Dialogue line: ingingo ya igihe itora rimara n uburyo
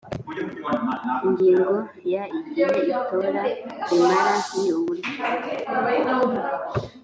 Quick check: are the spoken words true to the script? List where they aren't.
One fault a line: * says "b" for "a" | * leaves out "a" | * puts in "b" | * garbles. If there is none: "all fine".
all fine